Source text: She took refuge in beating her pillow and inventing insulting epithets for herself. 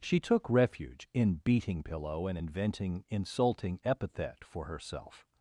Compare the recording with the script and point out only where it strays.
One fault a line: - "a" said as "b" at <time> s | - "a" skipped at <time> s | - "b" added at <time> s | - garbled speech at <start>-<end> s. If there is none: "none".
- "her" skipped at 1.8 s
- "epithets" said as "epithet" at 3.8 s